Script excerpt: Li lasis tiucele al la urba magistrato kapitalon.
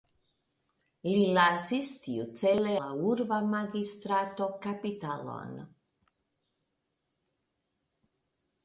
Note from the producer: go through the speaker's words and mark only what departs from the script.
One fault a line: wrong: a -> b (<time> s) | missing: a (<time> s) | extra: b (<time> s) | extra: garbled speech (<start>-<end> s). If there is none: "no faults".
missing: al (2.7 s)